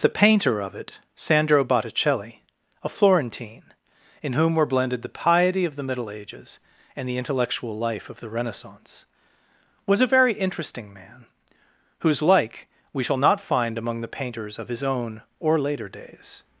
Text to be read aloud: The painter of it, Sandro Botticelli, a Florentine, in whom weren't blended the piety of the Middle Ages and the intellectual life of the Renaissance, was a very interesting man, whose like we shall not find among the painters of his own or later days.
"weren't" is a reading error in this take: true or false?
true